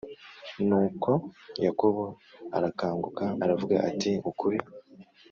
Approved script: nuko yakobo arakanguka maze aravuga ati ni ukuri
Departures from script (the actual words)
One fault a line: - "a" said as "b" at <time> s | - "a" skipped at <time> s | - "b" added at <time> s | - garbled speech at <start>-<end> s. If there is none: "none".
- "maze" skipped at 3.2 s
- "ni" skipped at 4.1 s